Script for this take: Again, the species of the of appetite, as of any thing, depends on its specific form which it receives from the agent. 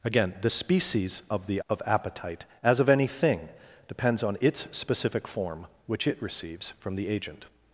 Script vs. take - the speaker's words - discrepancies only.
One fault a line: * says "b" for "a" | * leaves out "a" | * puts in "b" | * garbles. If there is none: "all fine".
all fine